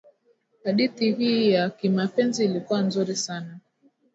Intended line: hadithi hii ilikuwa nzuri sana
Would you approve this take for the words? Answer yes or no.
no